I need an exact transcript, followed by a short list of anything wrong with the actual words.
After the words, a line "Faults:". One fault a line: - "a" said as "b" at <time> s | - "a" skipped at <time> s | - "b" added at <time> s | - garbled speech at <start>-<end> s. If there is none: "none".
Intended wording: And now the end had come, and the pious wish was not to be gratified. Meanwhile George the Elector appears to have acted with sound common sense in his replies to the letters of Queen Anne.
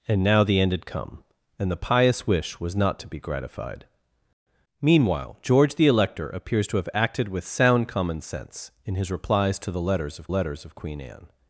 And now the end had come, and the pious wish was not to be gratified. Meanwhile George the Elector appears to have acted with sound common sense in his replies to the letters of letters of Queen Anne.
Faults:
- "letters of" added at 10.3 s